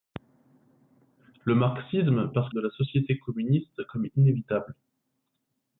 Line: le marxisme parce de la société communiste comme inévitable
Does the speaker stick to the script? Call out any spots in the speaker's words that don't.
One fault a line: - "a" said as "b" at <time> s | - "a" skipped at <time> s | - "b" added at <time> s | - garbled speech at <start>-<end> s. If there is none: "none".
none